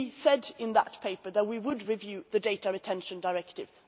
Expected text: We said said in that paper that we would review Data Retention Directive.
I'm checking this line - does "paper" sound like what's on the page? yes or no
yes